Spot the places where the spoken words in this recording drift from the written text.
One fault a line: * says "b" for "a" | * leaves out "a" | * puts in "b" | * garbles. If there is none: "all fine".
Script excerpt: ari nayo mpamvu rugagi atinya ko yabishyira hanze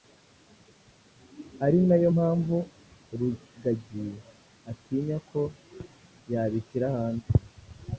all fine